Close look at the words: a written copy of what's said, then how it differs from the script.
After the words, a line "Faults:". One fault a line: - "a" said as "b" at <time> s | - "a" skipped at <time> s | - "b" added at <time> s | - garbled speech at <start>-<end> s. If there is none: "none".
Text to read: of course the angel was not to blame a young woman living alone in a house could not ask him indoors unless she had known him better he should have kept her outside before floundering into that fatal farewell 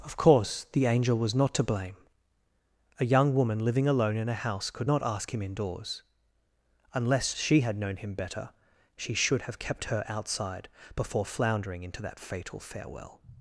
of course the angel was not to blame a young woman living alone in a house could not ask him indoors unless she had known him better she should have kept her outside before floundering into that fatal farewell
Faults:
- "he" said as "she" at 9.0 s